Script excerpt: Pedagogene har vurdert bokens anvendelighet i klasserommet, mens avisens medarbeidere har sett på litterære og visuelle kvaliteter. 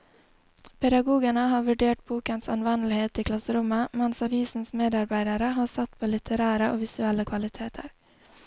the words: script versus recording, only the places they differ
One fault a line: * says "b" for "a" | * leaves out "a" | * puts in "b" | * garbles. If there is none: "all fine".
all fine